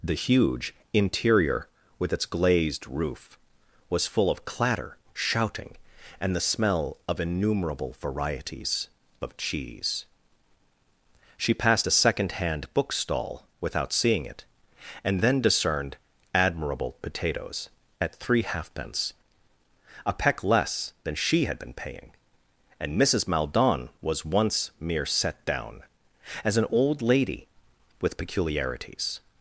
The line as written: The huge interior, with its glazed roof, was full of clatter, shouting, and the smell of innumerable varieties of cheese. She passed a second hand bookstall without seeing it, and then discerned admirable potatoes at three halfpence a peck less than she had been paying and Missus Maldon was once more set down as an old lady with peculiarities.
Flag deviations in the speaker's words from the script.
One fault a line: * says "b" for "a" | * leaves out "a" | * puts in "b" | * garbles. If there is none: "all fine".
* says "mere" for "more"